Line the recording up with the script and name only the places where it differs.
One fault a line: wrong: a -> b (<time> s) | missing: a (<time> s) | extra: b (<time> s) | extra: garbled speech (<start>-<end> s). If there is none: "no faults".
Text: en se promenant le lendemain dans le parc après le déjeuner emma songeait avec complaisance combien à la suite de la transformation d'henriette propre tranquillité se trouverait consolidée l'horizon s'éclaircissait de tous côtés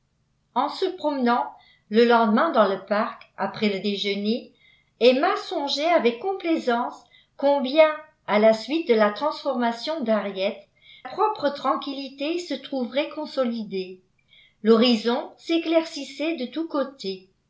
no faults